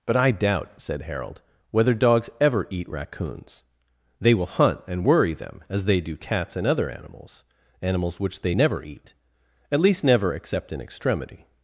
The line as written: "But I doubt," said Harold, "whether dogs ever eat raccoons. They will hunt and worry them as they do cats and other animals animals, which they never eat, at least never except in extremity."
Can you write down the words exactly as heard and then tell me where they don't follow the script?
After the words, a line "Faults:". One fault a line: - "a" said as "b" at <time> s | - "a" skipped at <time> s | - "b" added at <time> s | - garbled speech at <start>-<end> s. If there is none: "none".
"But I doubt," said Harold, "whether dogs ever eat raccoons. They will hunt and worry them as they do cats and other animals animals, which they never eat, at least never except in extremity."
Faults:
none